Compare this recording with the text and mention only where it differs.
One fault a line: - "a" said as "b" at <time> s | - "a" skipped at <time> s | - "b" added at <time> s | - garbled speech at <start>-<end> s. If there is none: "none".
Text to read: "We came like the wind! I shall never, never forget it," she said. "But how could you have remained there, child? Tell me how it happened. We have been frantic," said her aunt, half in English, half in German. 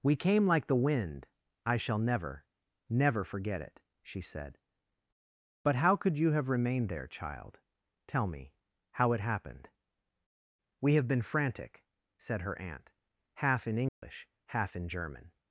none